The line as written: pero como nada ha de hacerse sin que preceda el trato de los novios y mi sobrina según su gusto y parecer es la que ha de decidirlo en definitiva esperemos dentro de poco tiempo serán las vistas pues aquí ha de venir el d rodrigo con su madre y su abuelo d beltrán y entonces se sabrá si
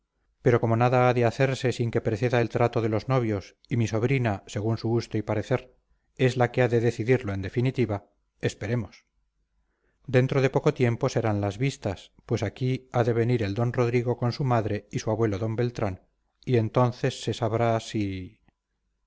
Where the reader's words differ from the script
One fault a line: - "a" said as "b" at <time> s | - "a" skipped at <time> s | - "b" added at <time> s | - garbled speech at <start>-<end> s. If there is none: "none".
none